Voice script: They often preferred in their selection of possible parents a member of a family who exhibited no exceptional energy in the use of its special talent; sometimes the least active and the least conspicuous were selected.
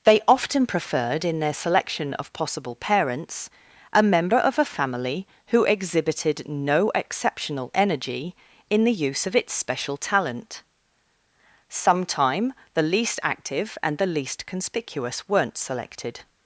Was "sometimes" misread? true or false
true